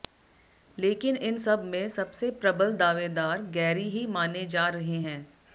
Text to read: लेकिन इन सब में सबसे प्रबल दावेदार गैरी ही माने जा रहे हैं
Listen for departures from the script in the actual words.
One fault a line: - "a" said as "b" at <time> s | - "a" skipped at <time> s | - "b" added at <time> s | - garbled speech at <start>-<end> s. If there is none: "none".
none